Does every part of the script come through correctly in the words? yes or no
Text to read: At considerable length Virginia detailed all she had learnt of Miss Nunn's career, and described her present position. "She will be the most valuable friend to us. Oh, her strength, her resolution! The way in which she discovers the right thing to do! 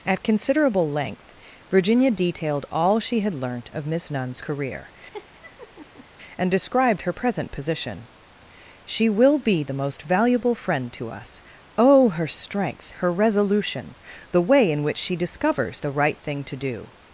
yes